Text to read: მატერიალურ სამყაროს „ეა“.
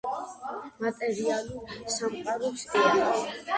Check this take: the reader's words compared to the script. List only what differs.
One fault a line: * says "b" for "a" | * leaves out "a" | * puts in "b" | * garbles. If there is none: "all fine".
all fine